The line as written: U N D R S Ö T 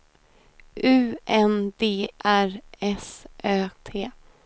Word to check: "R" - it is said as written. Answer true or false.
true